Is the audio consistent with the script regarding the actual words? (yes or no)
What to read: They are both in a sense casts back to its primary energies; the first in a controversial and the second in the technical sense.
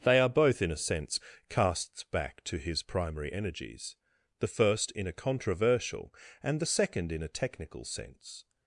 no